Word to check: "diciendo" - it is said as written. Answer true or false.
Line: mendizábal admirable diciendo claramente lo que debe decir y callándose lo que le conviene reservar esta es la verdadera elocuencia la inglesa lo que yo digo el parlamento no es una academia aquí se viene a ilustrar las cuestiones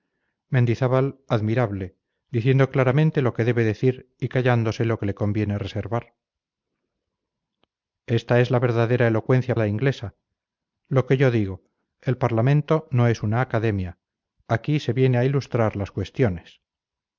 true